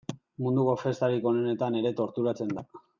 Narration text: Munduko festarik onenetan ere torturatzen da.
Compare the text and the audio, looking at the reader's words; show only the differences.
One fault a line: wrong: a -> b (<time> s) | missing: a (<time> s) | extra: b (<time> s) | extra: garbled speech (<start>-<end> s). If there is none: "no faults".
no faults